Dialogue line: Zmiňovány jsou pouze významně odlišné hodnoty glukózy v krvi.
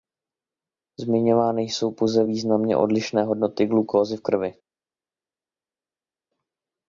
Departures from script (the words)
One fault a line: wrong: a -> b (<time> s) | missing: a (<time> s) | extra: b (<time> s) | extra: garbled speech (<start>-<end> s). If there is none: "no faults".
no faults